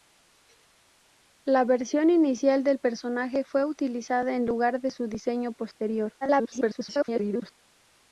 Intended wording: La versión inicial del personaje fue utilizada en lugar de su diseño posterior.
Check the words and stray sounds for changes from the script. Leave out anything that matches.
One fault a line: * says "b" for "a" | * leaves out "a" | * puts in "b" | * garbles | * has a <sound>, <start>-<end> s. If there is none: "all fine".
* garbles